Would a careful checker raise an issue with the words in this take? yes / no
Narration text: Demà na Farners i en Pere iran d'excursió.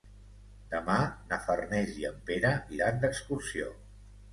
no